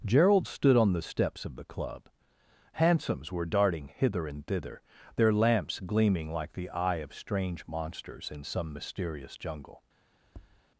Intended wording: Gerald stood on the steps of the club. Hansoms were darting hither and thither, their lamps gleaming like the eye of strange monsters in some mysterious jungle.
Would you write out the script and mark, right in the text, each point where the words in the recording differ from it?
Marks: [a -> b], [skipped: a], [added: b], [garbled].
Gerald stood on the steps of the club. Hansoms were darting hither and thither, their lamps gleaming like the eye of strange monsters in some mysterious jungle.